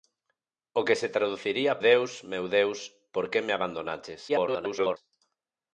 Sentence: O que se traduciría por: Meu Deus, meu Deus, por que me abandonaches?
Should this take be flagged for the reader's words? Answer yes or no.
yes